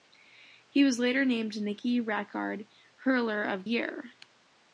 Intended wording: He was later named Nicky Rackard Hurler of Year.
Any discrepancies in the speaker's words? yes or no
no